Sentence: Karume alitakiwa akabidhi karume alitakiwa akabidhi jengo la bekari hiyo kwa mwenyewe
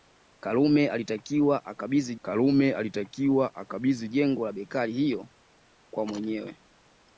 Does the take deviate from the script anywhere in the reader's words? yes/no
no